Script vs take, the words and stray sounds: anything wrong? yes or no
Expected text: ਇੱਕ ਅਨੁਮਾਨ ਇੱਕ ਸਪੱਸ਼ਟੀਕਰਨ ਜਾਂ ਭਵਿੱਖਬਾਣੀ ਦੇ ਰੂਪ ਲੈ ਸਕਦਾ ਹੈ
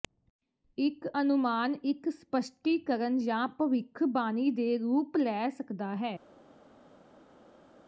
no